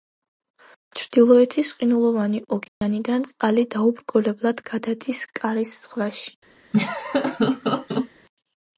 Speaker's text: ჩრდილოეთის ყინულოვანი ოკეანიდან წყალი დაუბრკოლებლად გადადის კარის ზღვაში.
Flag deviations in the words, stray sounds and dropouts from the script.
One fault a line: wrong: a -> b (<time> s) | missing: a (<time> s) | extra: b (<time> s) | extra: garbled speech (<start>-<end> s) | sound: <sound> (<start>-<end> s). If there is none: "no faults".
sound: dropout (2.7-2.8 s)
sound: laugh (6.7-8.1 s)